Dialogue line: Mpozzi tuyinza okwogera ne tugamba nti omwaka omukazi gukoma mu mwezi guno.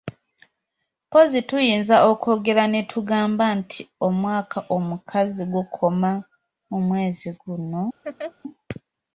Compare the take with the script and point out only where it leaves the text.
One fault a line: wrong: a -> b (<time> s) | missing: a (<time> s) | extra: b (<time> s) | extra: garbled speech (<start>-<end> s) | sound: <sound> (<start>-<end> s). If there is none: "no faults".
sound: laugh (8.0-8.3 s)